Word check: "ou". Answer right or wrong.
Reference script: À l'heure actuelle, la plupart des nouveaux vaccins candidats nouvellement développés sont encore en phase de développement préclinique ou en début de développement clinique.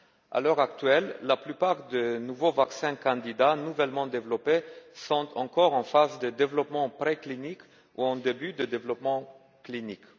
right